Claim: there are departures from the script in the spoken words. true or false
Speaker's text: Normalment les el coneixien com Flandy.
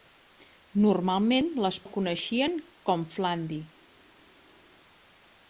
false